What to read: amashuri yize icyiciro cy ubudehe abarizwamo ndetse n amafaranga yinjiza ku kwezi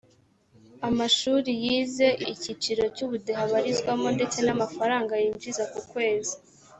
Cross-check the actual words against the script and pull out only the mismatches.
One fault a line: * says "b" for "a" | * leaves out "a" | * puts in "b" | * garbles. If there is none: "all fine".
all fine